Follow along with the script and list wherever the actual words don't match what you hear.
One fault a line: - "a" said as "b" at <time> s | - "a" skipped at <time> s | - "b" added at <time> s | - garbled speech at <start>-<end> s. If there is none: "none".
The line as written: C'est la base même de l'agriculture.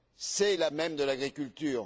- "base" skipped at 0.7 s